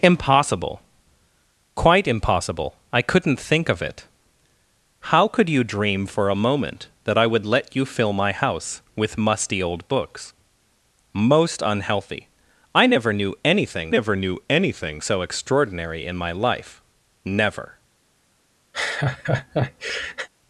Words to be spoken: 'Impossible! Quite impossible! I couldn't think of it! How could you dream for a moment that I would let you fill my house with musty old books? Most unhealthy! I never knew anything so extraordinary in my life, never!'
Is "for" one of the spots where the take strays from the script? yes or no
no